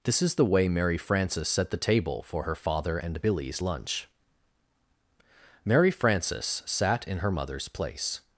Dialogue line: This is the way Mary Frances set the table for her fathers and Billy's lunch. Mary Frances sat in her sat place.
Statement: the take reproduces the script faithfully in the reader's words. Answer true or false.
false